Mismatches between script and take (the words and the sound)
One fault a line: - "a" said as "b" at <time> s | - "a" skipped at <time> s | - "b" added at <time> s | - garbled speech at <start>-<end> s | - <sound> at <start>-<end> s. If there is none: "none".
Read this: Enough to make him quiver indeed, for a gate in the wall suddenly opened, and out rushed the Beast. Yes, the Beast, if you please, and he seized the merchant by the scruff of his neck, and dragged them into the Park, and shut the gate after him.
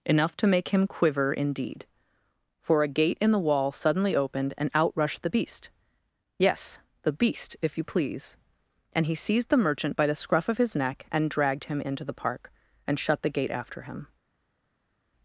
- "them" said as "him" at 11.7 s